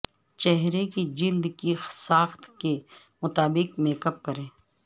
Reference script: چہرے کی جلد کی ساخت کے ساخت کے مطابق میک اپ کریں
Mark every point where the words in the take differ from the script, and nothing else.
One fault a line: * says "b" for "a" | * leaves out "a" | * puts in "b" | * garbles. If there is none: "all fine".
* leaves out "ساخت کے"